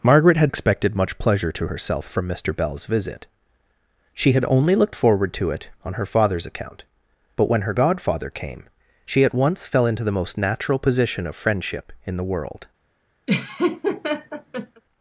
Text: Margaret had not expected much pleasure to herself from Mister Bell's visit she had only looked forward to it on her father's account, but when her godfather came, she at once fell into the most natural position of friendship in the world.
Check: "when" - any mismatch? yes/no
no